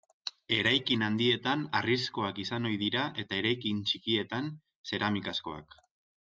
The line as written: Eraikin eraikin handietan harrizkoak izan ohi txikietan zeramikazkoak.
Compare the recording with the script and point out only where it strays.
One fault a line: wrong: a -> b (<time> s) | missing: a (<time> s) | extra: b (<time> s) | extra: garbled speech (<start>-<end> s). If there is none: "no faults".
missing: eraikin (1.0 s)
extra: dira eta eraikin (2.9 s)